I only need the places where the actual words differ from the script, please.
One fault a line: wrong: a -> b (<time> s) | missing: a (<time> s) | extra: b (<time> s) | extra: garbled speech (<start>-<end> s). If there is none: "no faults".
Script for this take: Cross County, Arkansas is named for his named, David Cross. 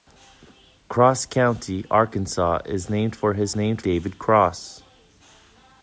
no faults